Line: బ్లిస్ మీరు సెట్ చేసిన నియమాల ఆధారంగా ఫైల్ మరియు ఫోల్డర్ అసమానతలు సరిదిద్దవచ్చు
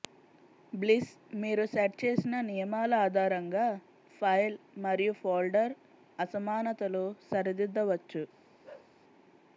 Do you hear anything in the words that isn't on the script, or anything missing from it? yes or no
no